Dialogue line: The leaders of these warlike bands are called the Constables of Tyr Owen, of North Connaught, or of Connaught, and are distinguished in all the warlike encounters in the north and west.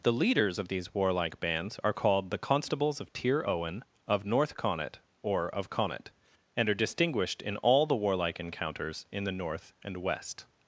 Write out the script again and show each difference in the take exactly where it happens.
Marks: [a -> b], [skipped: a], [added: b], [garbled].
The leaders of these warlike bands are called the Constables of Tyr Owen, of North Connaught, or of Connaught, and are distinguished in all the warlike encounters in the north and west.